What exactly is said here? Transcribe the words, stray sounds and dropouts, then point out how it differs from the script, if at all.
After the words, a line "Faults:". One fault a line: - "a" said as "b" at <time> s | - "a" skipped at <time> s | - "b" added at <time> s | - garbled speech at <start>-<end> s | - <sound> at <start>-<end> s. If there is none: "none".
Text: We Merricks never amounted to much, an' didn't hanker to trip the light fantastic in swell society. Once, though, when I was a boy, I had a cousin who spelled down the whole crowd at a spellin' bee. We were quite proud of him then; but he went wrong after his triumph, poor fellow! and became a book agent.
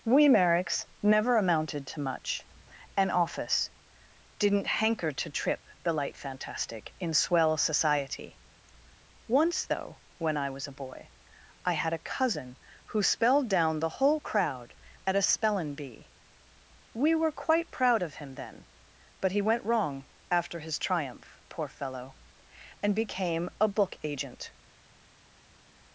We Merricks never amounted to much, an' office didn't hanker to trip the light fantastic in swell society. Once, though, when I was a boy, I had a cousin who spelled down the whole crowd at a spellin' bee. We were quite proud of him then; but he went wrong after his triumph, poor fellow! and became a book agent.
Faults:
- "office" added at 3.1 s